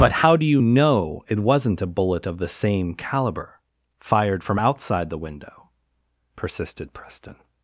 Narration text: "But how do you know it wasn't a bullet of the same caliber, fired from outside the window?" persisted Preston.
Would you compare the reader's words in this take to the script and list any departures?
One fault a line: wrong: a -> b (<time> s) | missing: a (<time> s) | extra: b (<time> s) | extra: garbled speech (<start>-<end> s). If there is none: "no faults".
no faults